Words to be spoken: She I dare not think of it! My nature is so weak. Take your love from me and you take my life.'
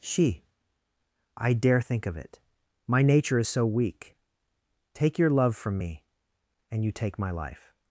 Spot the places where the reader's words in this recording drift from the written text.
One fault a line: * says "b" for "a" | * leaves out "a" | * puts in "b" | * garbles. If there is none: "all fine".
* leaves out "not"